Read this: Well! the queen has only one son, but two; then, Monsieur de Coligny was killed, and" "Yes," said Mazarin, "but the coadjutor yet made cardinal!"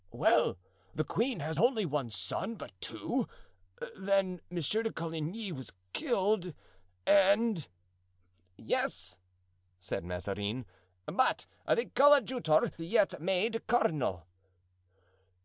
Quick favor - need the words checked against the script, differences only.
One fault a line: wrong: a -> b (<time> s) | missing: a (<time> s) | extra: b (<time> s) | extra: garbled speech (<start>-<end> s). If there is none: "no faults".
no faults